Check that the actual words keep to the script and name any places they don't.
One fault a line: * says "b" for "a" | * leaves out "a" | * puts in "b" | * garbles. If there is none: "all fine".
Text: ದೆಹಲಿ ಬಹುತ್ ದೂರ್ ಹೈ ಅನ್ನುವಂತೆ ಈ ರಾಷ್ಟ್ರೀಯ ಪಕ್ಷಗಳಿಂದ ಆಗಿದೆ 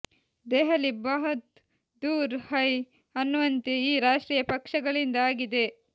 all fine